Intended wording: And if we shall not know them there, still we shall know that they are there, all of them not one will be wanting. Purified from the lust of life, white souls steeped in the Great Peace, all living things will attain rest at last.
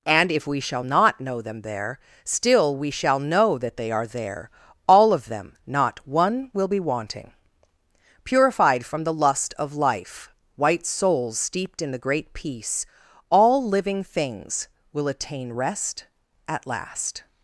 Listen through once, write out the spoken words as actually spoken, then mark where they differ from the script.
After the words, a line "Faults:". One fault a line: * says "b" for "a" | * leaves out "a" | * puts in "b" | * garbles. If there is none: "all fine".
And if we shall not know them there, still we shall know that they are there, all of them not one will be wanting. Purified from the lust of life, white souls steeped in the Great Peace, all living things will attain rest at last.
Faults:
all fine